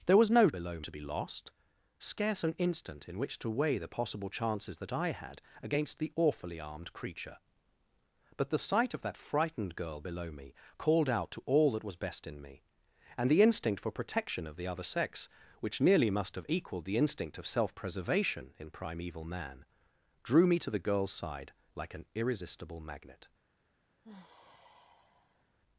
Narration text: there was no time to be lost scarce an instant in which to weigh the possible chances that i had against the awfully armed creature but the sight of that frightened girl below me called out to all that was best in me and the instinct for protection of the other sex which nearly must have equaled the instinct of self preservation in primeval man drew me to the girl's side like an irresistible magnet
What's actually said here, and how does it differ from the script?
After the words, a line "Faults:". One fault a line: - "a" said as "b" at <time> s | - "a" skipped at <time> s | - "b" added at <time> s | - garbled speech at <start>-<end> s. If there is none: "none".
there was no below to be lost scarce an instant in which to weigh the possible chances that i had against the awfully armed creature but the sight of that frightened girl below me called out to all that was best in me and the instinct for protection of the other sex which nearly must have equaled the instinct of self preservation in primeval man drew me to the girl's side like an irresistible magnet
Faults:
- "time" said as "below" at 0.5 s